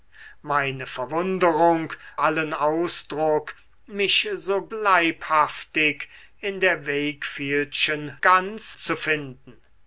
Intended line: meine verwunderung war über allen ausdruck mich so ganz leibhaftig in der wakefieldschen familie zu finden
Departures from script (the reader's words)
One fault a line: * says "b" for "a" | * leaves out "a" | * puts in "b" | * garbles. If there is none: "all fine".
* leaves out "war über"
* leaves out "ganz"
* says "ganz" for "familie"